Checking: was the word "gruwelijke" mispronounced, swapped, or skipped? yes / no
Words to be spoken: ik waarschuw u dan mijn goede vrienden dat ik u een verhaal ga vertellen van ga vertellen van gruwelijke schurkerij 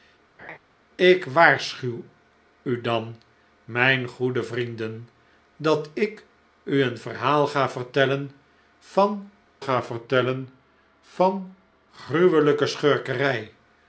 no